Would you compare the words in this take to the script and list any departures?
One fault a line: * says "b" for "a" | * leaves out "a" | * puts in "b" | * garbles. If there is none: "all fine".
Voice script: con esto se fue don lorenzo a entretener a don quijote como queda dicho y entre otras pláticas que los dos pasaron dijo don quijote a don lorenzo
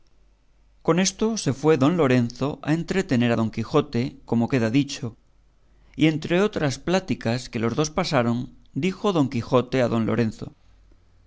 all fine